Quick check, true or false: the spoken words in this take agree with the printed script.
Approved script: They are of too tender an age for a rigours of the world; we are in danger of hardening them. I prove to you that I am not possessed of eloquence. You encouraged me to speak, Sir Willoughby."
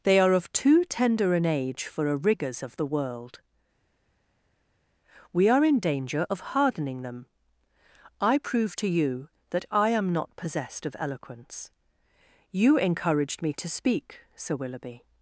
true